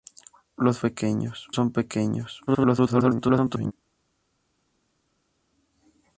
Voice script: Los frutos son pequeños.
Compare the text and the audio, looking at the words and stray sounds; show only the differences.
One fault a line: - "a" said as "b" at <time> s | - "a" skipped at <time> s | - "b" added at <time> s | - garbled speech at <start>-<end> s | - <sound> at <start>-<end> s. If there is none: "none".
- "frutos" said as "pequeños" at 0.8 s
- garbled speech at 2.5-3.7 s